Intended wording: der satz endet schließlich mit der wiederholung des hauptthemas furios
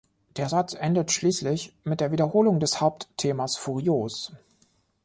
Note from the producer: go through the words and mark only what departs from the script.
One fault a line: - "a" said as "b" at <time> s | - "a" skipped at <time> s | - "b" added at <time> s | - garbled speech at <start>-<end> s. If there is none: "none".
none